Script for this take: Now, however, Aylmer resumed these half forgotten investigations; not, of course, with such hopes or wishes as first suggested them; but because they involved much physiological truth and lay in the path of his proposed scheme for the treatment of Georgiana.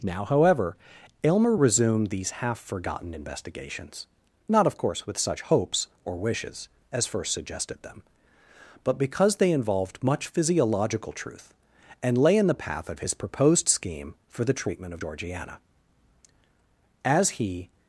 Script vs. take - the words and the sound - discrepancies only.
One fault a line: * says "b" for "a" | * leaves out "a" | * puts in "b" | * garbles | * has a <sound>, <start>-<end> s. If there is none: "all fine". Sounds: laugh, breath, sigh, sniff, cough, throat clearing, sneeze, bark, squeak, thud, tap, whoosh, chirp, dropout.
* puts in "As he"